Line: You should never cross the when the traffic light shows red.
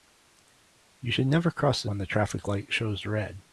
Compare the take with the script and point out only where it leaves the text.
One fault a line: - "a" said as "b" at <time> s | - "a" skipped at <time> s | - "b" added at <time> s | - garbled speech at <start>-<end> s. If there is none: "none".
none